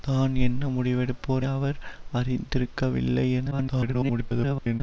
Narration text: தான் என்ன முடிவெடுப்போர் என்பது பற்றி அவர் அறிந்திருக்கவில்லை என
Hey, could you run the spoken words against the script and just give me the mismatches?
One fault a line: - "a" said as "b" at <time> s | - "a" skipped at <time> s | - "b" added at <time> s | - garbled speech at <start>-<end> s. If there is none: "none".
- "என்பது பற்றி" skipped at 1.4 s
- garbled speech at 3.5-4.8 s